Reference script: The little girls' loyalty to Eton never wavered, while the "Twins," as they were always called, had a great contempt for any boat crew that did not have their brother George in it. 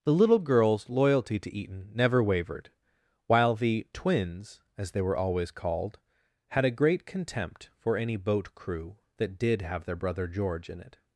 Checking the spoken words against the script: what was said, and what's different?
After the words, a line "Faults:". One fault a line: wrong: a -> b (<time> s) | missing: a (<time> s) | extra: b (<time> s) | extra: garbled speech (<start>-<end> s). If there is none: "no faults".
The little girls' loyalty to Eton never wavered, while the "Twins," as they were always called, had a great contempt for any boat crew that did have their brother George in it.
Faults:
missing: not (9.6 s)